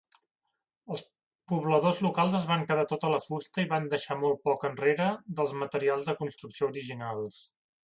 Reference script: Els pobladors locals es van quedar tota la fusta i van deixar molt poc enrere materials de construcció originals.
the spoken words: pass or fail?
fail